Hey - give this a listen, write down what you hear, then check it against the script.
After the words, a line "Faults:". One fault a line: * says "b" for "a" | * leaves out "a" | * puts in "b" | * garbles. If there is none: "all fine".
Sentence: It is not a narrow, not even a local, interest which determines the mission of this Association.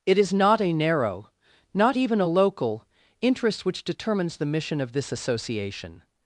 It is not a narrow, not even a local, interest which determines the mission of this Association.
Faults:
all fine